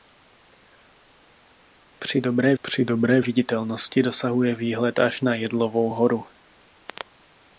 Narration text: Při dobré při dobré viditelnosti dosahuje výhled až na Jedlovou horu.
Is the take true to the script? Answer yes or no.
yes